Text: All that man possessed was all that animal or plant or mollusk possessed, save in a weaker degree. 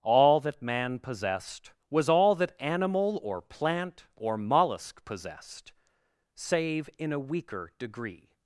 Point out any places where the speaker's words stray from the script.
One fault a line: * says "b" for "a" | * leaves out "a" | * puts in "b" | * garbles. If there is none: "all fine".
all fine